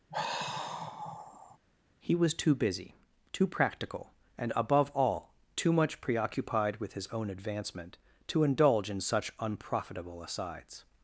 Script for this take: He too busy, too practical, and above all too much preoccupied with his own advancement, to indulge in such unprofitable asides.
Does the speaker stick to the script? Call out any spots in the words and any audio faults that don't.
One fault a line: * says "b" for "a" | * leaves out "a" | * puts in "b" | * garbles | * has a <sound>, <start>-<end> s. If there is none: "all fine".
* has a sigh, 0.1-1.6 s
* puts in "was"